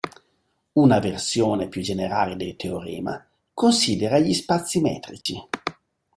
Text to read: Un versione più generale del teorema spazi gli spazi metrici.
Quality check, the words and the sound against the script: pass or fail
fail